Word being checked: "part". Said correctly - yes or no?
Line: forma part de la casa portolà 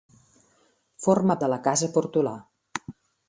no